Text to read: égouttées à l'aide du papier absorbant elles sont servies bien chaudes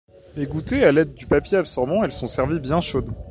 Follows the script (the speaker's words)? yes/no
yes